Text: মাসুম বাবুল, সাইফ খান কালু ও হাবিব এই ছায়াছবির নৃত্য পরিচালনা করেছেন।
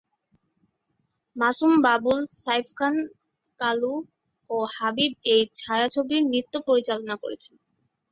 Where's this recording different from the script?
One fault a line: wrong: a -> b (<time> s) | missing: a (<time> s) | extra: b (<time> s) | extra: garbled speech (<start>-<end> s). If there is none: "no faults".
no faults